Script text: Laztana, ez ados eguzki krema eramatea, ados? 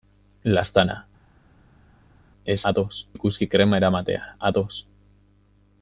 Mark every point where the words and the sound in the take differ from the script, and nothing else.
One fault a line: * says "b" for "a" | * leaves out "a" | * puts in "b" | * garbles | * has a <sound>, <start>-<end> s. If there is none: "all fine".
all fine